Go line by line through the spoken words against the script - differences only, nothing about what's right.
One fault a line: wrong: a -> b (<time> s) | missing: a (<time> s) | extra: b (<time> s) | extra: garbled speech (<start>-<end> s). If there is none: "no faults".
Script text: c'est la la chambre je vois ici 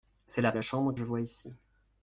no faults